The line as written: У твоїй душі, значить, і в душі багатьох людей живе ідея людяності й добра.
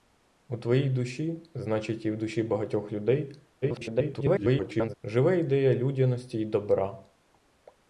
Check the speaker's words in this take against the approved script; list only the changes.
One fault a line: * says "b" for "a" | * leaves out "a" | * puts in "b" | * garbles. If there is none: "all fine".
* garbles